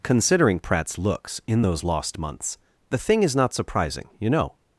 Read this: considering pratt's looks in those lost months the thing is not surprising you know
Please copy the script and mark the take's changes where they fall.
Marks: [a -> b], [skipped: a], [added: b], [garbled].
considering pratt's looks in those lost months the thing is not surprising you know